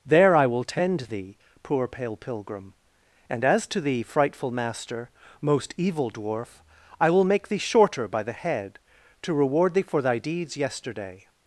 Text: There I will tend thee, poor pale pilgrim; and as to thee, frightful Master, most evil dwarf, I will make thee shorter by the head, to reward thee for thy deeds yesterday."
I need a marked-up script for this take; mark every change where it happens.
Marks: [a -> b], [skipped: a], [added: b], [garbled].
There I will tend thee, poor pale pilgrim; and as to thee, frightful Master, most evil dwarf, I will make thee shorter by the head, to reward thee for thy deeds yesterday."